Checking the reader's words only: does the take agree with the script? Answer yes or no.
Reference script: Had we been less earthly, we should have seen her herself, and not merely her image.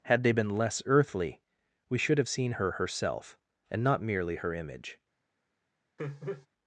no